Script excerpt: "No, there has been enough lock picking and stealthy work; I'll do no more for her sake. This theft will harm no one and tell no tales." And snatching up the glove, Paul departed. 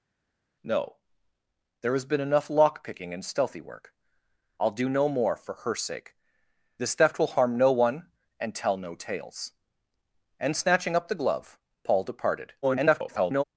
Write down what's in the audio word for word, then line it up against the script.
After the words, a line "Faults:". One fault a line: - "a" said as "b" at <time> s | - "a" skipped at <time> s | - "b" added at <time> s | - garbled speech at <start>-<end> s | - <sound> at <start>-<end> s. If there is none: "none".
"No, there has been enough lock picking and stealthy work; I'll do no more for her sake. This theft will harm no one and tell no tales." And snatching up the glove, Paul departed. [garbled]
Faults:
- garbled speech at 12.6-13.4 s